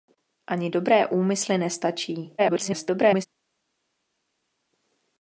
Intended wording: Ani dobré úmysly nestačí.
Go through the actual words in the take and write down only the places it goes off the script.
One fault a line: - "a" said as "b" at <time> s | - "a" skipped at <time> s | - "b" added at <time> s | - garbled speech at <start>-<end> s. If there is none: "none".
- garbled speech at 2.4-3.3 s